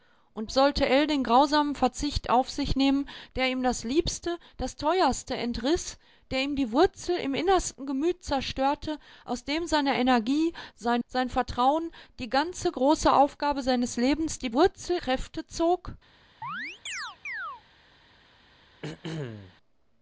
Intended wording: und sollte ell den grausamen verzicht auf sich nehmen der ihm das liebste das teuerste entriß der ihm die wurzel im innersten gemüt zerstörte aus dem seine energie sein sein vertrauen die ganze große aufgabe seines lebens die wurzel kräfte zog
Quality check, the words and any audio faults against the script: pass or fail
fail